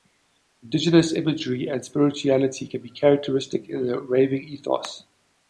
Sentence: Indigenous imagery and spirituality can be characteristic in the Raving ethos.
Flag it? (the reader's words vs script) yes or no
no